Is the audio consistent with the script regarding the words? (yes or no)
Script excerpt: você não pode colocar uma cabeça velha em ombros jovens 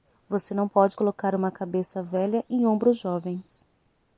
yes